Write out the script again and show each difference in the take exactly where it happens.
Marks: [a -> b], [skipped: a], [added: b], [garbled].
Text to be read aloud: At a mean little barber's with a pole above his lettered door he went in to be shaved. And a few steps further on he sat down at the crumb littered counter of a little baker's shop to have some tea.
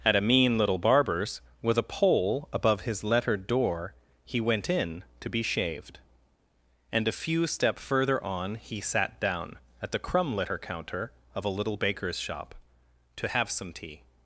At a mean little barber's with a pole above his lettered door he went in to be shaved. And a few [steps -> step] further on he sat down at the crumb [littered -> litter] counter of a little baker's shop to have some tea.